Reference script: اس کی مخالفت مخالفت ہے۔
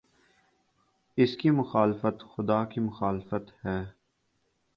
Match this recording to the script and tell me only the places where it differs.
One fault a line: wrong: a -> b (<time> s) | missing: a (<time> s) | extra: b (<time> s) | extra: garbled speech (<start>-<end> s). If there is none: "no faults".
extra: خدا کی (2.3 s)